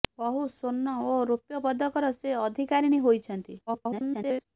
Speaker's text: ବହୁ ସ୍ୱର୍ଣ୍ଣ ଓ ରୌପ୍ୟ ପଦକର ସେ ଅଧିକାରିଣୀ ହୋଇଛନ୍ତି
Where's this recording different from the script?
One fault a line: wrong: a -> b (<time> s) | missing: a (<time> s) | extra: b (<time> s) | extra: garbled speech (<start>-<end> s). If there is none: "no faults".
extra: garbled speech (3.7-4.5 s)